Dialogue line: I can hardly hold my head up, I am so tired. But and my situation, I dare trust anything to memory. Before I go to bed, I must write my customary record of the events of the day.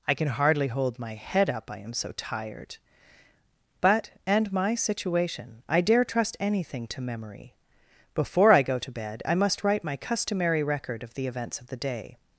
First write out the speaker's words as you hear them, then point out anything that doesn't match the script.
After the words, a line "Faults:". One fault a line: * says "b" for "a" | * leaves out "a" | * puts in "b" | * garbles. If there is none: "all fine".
I can hardly hold my head up, I am so tired. But and my situation, I dare trust anything to memory. Before I go to bed, I must write my customary record of the events of the day.
Faults:
all fine